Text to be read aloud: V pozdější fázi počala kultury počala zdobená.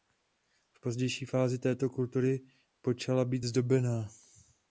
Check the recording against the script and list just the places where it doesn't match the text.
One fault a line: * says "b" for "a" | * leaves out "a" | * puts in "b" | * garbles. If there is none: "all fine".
* says "této" for "počala"
* puts in "být"